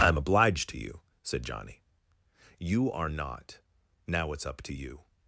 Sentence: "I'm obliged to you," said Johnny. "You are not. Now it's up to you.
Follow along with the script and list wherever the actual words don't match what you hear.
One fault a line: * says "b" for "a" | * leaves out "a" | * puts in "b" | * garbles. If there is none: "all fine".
all fine